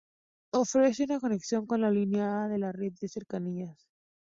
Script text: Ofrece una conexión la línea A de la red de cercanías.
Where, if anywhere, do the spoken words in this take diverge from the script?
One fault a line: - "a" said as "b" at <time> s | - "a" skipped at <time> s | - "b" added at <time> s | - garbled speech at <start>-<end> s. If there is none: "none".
- "con" added at 1.7 s